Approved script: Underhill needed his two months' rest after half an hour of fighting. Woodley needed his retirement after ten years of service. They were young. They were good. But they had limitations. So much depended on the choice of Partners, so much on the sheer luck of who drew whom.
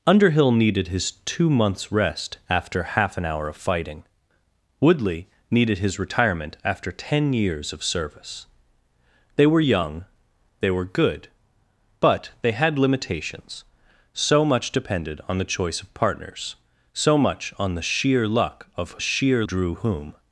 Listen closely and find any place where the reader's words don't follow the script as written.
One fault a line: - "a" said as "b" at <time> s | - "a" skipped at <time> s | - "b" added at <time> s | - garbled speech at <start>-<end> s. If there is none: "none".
- "who" said as "sheer" at 19.0 s